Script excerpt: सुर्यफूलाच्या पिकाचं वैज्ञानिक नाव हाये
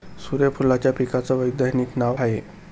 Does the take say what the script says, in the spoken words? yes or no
yes